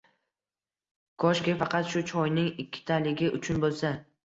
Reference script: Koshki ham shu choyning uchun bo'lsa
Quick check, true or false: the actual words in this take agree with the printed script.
false